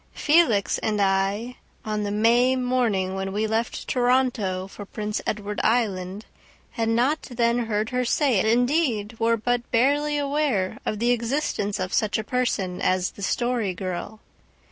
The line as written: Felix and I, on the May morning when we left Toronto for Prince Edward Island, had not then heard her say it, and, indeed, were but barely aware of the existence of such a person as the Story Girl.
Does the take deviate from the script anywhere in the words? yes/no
yes